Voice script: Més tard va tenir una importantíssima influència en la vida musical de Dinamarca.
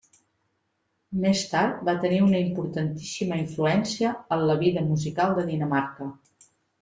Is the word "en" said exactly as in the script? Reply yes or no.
yes